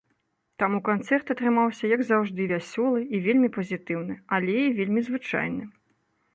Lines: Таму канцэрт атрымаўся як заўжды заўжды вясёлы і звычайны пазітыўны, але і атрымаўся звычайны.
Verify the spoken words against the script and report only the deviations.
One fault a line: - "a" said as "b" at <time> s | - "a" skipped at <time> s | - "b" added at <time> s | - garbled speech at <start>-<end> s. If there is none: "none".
- "заўжды" skipped at 2.5 s
- "звычайны" said as "вельмі" at 3.3 s
- "атрымаўся" said as "вельмі" at 4.8 s